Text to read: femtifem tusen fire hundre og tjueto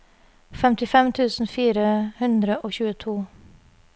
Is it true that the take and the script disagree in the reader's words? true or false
false